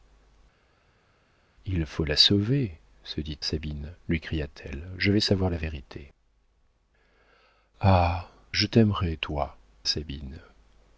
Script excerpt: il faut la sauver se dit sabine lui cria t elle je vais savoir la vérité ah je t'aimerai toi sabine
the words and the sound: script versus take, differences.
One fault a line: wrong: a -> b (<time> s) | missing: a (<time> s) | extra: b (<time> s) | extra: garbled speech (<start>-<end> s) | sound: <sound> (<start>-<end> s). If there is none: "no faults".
no faults